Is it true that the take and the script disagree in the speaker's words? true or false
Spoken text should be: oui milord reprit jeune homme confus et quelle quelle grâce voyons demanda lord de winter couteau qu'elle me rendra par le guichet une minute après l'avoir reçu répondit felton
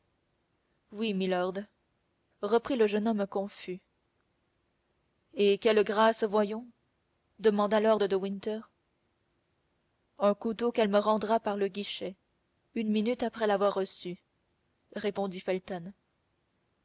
true